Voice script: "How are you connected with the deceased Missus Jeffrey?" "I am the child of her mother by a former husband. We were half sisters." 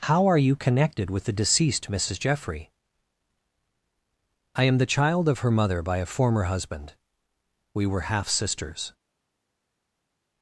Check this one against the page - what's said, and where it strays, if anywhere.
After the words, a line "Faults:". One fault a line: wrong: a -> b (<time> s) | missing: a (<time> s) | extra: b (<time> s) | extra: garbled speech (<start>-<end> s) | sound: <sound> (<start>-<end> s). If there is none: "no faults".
"How are you connected with the deceased Missus Jeffrey?" "I am the child of her mother by a former husband. We were half sisters."
Faults:
no faults